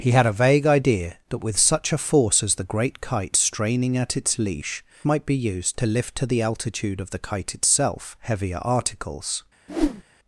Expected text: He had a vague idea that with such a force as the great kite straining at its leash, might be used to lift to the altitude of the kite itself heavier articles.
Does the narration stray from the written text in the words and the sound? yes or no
yes